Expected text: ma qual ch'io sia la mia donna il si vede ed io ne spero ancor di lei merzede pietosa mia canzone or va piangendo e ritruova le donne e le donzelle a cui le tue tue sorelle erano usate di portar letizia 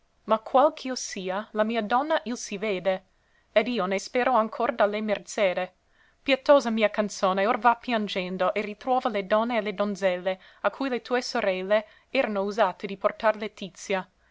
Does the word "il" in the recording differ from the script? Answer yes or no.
no